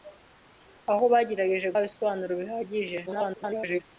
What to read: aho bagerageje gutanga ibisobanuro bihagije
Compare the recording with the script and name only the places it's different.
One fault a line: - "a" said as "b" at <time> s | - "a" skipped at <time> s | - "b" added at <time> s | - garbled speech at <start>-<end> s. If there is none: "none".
- "gutanga" skipped at 1.7 s
- garbled speech at 3.1-3.8 s